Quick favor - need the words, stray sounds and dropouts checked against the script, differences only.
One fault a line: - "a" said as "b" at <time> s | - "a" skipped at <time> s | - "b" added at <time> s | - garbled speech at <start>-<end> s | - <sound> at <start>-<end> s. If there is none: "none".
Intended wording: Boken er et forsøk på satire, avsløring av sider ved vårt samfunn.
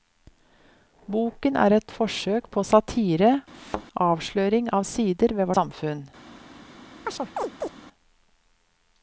- thud at 3.5-3.9 s
- "vårt" skipped at 5.5 s
- chirp at 7.1-7.7 s